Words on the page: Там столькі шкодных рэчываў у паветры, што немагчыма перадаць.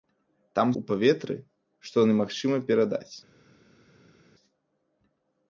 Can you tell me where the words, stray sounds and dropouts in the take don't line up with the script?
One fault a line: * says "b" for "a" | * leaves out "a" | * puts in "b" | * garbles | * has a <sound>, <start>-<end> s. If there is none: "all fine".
* leaves out "столькі шкодных рэчываў"